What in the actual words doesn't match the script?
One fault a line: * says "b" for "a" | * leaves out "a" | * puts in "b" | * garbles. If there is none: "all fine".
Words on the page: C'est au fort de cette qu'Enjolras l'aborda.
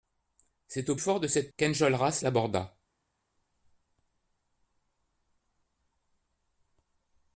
all fine